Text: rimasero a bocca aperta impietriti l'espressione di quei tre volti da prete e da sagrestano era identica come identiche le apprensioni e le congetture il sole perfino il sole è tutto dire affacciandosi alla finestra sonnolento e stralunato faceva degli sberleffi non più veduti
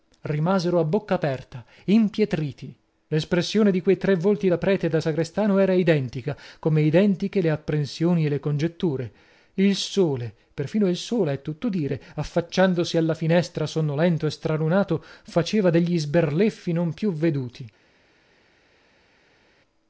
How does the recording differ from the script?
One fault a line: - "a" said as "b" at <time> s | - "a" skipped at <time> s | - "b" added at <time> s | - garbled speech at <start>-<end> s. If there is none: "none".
none